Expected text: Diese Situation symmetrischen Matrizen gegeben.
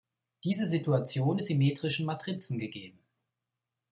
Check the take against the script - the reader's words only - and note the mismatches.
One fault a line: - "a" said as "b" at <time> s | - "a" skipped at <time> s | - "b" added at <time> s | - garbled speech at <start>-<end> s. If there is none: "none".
none